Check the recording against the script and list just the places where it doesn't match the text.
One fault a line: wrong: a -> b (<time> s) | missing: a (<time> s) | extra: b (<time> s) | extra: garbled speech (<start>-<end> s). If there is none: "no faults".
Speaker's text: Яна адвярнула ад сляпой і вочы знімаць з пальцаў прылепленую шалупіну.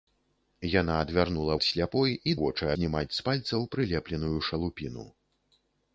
no faults